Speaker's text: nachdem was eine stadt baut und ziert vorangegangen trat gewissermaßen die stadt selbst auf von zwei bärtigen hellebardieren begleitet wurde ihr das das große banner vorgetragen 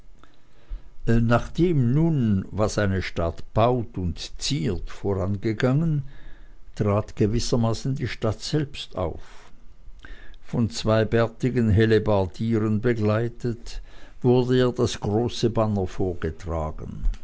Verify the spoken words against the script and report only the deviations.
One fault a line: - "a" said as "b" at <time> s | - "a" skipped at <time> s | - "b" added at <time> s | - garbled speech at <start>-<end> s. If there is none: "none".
- "nun" added at 1.9 s
- "das" skipped at 15.0 s